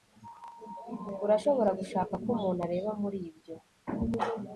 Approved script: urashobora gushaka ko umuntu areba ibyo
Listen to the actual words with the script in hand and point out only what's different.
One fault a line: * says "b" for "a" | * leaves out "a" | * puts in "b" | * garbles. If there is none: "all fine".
* puts in "muri"